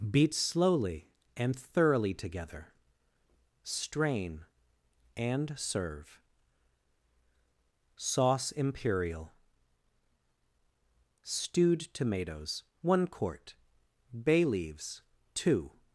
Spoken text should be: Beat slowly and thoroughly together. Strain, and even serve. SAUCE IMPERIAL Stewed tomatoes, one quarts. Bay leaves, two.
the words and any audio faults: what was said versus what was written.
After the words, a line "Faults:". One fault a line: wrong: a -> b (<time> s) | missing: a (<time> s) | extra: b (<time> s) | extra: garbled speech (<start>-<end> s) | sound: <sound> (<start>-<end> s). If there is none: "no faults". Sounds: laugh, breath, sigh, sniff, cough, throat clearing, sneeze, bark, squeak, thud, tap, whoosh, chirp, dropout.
Beat slowly and thoroughly together. Strain, and serve. SAUCE IMPERIAL Stewed tomatoes, one quart. Bay leaves, two.
Faults:
missing: even (5.5 s)
wrong: quarts -> quart (13.1 s)